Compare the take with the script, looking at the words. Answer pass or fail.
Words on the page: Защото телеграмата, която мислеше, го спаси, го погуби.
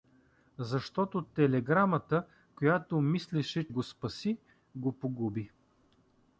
pass